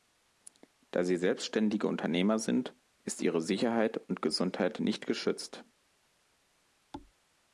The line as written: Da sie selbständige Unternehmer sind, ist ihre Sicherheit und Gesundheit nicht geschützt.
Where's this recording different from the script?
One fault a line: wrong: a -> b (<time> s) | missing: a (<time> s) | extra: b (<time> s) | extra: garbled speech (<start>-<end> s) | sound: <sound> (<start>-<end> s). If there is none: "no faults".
sound: thud (6.9-7.1 s)